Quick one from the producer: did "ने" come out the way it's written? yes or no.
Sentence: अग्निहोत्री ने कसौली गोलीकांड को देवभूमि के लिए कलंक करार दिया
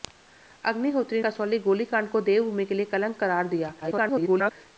no